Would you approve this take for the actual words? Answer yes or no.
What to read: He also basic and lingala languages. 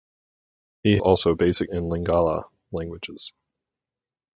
yes